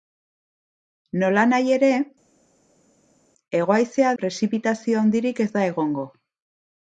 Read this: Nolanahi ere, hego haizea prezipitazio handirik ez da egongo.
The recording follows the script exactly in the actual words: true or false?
true